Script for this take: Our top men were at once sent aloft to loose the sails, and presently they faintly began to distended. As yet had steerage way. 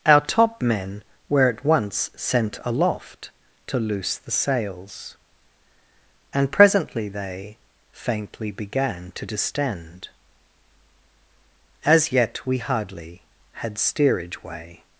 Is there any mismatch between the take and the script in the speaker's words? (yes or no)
yes